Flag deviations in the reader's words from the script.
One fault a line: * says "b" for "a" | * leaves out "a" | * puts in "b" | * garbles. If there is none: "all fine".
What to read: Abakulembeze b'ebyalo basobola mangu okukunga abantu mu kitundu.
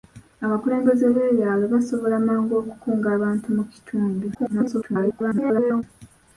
* garbles